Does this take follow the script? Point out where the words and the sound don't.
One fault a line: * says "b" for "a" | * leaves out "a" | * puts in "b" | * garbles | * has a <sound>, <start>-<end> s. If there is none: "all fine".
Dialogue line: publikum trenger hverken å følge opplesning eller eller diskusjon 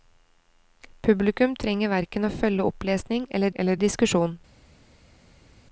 all fine